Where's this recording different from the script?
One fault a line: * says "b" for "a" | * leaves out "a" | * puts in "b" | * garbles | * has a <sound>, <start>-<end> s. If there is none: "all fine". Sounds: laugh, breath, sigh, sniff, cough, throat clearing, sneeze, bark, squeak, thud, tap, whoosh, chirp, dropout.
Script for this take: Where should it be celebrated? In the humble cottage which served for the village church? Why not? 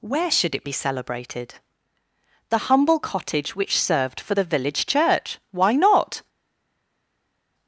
* leaves out "In"